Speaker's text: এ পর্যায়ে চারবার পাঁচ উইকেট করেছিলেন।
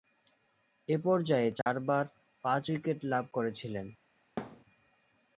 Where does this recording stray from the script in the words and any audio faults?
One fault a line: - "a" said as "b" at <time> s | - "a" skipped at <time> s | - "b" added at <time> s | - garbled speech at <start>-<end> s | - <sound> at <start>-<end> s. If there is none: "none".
- dropout at 1.6-1.7 s
- "লাভ" added at 3.0 s
- thud at 4.4-4.6 s